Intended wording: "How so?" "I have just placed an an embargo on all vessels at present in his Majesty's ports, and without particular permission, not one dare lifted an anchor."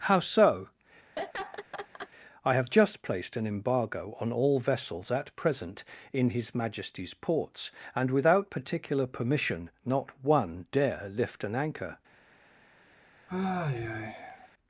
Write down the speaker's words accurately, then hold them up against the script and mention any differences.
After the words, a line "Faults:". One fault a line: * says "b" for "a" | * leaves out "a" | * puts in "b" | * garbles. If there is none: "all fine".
"How so?" "I have just placed an embargo on all vessels at present in his Majesty's ports, and without particular permission, not one dare lift an anchor."
Faults:
* leaves out "an"
* says "lift" for "lifted"